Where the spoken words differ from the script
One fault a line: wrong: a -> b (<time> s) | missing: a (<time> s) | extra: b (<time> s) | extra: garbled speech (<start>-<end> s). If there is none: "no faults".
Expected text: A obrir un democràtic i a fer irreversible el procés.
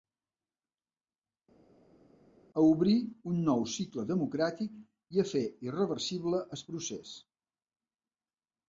extra: nou cicle (3.5 s)